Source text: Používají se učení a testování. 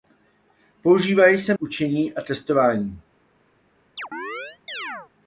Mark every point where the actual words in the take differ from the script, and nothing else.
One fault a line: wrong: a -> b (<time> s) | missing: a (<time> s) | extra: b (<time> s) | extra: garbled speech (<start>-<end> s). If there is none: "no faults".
no faults